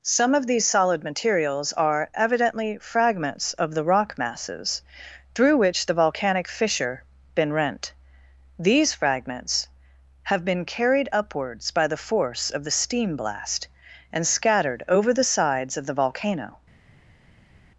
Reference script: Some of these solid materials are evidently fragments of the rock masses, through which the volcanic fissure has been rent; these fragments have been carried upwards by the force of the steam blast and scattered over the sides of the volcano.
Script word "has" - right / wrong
wrong